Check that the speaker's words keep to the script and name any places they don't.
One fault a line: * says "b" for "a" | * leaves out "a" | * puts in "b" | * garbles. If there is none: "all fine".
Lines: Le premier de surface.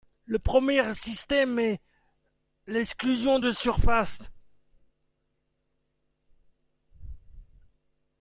* puts in "système est l'exclusion"